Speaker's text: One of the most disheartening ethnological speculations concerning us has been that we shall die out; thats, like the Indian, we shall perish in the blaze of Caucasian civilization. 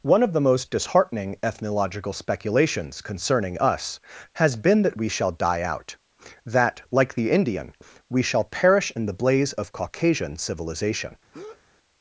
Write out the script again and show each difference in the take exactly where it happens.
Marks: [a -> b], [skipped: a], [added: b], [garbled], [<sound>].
One of the most disheartening ethnological speculations concerning us has been that we shall die out; [thats, -> that] like the Indian, we shall perish in the blaze of Caucasian civilization. [breath]